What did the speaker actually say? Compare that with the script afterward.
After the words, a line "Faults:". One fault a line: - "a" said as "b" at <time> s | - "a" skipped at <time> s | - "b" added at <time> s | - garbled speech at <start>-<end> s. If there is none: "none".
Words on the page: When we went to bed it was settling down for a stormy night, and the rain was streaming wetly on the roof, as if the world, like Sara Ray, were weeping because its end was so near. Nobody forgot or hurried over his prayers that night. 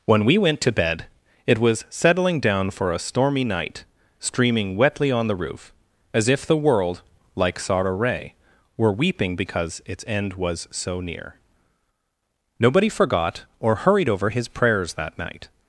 When we went to bed it was settling down for a stormy night, streaming wetly on the roof, as if the world, like Sara Ray, were weeping because its end was so near. Nobody forgot or hurried over his prayers that night.
Faults:
- "and the rain was" skipped at 3.9 s